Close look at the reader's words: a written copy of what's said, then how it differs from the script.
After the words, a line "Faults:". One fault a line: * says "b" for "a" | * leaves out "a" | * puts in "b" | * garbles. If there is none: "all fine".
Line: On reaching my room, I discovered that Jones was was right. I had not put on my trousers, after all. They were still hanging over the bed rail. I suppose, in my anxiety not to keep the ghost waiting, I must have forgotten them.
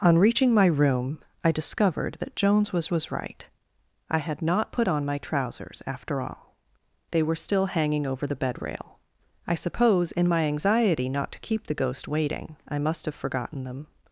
On reaching my room, I discovered that Jones was was right. I had not put on my trousers, after all. They were still hanging over the bed rail. I suppose, in my anxiety not to keep the ghost waiting, I must have forgotten them.
Faults:
all fine